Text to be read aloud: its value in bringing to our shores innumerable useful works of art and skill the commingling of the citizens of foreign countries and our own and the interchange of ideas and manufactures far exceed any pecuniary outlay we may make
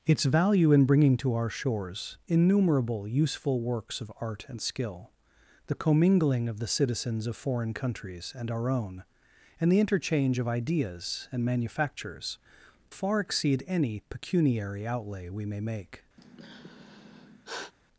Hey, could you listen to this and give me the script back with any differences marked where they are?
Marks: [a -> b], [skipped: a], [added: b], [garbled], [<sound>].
its value in bringing to our shores innumerable useful works of art and skill the commingling of the citizens of foreign countries and our own and the interchange of ideas and manufactures far exceed any pecuniary outlay we may make [sigh]